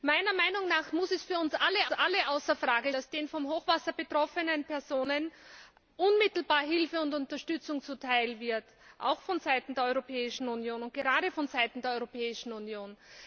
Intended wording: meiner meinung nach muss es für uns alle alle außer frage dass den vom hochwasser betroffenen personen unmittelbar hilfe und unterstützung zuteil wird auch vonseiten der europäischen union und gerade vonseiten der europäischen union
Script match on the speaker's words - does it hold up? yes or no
yes